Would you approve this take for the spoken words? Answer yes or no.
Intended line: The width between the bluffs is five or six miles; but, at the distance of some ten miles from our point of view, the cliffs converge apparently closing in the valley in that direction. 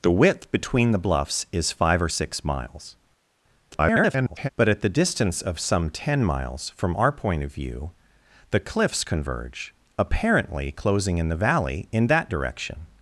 no